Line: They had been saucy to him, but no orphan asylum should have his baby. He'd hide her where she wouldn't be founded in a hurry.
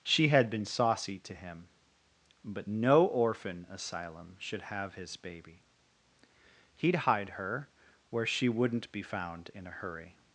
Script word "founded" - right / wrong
wrong